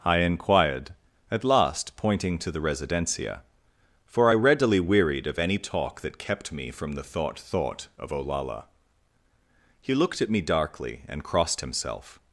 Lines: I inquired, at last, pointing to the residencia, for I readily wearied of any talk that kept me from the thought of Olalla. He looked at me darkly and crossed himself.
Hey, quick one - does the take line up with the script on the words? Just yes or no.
no